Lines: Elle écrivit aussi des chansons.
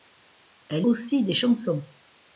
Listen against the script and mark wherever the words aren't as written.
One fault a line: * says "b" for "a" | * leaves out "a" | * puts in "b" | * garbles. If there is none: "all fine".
* leaves out "écrivit"